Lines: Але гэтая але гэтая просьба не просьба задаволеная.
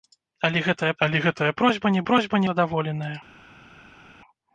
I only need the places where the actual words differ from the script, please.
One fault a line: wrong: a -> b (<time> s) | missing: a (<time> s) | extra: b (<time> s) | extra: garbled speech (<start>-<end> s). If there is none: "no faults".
no faults